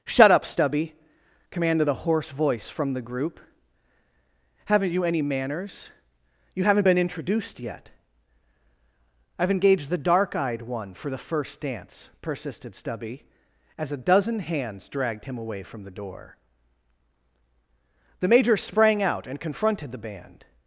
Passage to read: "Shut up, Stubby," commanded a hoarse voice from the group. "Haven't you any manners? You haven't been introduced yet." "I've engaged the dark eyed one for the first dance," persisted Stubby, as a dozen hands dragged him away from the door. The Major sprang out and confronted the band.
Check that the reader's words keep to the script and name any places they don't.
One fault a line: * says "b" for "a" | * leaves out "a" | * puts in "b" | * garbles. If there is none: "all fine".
all fine